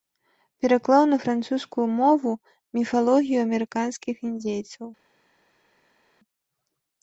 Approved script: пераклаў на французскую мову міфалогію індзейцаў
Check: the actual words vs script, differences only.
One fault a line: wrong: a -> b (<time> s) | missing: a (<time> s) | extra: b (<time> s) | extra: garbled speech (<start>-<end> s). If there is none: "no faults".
extra: амерыканскіх (3.5 s)